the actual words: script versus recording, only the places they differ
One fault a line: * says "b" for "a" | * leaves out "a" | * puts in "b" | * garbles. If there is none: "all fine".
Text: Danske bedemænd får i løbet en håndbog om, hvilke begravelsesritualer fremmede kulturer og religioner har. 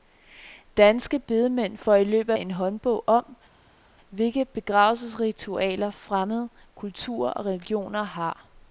all fine